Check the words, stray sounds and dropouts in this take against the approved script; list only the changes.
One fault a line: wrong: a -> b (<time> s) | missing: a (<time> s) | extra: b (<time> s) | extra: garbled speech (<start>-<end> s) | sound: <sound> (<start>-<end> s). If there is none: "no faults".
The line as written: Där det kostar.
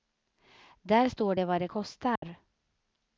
extra: står det vad (1.1 s)
sound: dropout (2.2-2.2 s)